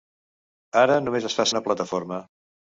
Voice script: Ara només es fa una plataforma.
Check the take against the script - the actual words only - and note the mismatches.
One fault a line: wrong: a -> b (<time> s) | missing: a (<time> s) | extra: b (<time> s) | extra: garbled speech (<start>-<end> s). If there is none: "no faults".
no faults